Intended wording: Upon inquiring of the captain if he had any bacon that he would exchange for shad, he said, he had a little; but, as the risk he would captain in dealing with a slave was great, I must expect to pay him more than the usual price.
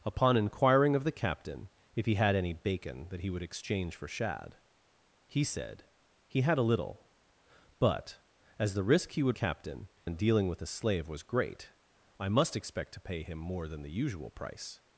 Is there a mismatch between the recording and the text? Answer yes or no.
no